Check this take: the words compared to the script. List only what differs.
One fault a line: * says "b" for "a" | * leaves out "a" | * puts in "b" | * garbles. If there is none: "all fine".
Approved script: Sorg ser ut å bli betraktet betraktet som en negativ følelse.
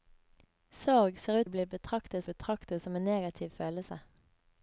all fine